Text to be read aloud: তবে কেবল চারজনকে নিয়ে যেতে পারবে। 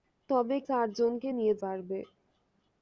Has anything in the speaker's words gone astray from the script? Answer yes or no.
yes